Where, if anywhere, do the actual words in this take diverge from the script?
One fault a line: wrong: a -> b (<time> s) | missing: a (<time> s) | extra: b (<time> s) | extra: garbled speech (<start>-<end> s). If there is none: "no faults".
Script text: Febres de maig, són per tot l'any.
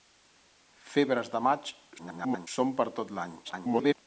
extra: garbled speech (2.0-2.5 s)
extra: garbled speech (3.4-3.9 s)